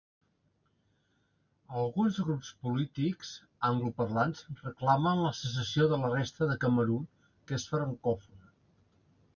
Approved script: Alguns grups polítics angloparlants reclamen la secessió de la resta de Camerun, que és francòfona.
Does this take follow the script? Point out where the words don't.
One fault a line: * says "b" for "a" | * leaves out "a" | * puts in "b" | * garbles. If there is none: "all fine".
all fine